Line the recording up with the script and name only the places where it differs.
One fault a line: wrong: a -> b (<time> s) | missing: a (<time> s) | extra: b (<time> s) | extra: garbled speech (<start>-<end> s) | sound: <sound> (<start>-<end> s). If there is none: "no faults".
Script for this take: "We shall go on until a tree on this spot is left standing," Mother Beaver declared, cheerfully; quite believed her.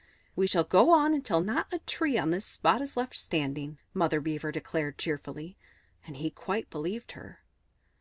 extra: not (1.4 s)
extra: and he (6.0 s)